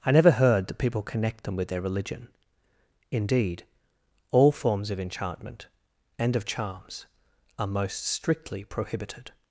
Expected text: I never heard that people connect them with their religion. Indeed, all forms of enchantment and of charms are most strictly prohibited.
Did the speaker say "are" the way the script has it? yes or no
yes